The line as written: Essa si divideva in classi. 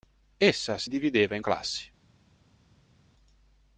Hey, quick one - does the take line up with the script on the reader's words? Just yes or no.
yes